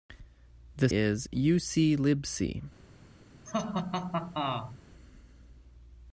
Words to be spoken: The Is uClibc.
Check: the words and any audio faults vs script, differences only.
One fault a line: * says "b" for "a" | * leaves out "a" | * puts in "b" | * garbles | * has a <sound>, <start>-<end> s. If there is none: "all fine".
* has a laugh, 3.5-4.8 s